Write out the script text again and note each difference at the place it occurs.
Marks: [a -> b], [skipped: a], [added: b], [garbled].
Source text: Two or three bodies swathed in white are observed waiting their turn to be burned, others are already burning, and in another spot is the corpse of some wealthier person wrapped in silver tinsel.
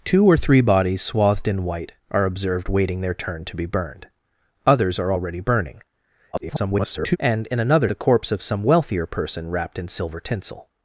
Two or three bodies swathed in white are observed waiting their turn to be burned, others are already burning, [garbled] and in another [skipped: spot is] the corpse of some wealthier person wrapped in silver tinsel.